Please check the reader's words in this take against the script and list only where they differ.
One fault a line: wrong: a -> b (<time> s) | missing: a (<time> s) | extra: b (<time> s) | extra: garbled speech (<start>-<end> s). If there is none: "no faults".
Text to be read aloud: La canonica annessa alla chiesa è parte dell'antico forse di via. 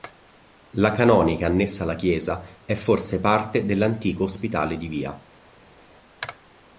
extra: forse (2.7 s)
wrong: forse -> ospitale (4.2 s)